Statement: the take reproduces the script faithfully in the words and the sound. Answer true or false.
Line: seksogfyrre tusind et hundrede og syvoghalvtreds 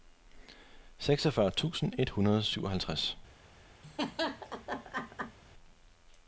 false